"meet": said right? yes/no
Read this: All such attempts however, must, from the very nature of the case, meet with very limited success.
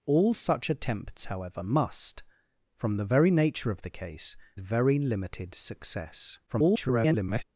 no